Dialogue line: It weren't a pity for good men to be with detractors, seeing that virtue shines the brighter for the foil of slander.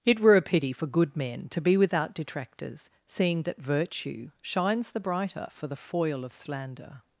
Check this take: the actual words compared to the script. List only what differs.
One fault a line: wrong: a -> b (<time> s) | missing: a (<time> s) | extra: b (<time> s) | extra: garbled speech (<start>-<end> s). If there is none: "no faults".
wrong: weren't -> were (0.2 s)
wrong: with -> without (1.8 s)